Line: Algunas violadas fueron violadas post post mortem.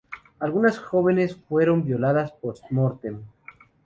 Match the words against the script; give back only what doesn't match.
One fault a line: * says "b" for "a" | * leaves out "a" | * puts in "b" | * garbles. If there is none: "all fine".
* says "jóvenes" for "violadas"
* leaves out "post"